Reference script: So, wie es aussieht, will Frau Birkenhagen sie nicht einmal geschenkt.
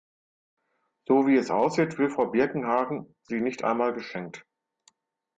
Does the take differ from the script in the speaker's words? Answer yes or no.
no